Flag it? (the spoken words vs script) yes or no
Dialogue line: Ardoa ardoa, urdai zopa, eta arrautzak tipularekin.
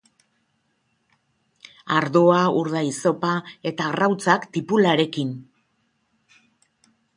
yes